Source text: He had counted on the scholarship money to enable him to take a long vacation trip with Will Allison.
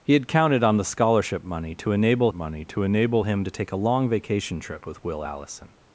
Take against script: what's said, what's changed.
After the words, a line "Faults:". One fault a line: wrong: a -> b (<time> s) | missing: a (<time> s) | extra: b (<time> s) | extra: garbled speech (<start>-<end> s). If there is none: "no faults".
He had counted on the scholarship money to enable money to enable him to take a long vacation trip with Will Allison.
Faults:
extra: money to enable (2.3 s)